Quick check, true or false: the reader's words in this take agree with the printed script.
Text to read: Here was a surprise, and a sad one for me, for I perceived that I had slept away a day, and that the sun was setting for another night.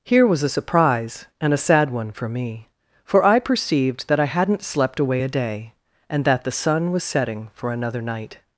false